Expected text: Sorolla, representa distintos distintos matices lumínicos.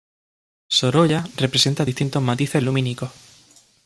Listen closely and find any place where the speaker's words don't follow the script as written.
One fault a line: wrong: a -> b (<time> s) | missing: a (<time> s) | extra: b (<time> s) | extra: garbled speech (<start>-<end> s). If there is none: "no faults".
missing: distintos (2.2 s)